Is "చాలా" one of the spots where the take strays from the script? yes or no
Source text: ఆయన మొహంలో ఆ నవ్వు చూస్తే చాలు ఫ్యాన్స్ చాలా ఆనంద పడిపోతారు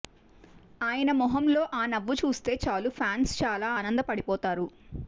no